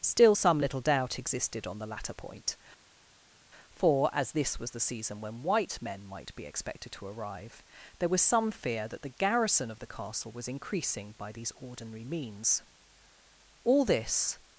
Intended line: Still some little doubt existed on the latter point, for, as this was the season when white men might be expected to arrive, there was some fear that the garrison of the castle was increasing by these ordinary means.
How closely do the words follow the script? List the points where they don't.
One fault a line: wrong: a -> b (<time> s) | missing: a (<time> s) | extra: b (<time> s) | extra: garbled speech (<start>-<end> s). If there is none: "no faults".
extra: All this (13.6 s)